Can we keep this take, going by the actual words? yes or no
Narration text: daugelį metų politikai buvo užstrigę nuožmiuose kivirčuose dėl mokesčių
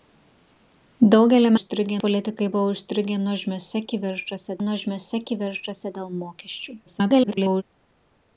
no